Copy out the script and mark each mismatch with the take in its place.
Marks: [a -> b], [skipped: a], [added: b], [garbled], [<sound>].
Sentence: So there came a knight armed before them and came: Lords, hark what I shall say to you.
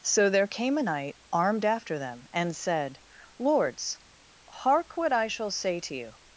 So there came a knight armed [before -> after] them and [came: -> said] Lords, hark what I shall say to you.